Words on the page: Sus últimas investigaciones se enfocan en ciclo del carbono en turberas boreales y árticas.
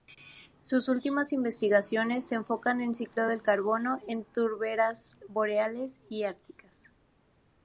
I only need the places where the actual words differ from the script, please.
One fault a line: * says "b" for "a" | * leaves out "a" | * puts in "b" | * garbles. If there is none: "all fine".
all fine